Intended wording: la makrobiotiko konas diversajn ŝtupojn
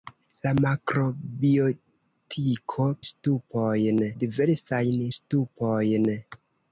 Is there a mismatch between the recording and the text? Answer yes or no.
yes